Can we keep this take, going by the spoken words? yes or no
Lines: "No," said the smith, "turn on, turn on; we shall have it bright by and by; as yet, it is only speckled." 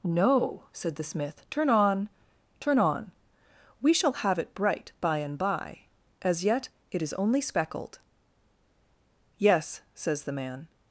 no